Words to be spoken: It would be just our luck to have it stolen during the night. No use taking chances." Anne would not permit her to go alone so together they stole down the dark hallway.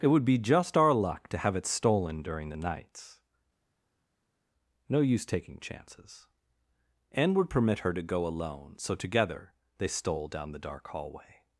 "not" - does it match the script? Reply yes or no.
no